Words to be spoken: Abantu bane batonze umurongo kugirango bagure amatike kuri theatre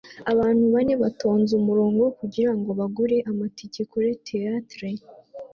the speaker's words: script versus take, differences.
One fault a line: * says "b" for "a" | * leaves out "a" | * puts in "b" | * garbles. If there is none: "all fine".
all fine